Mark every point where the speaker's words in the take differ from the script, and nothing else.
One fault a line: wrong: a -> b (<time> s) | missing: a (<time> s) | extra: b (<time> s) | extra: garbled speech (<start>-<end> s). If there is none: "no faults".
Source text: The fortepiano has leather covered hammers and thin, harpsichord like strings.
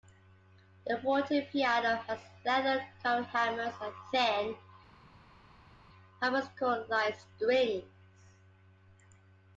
no faults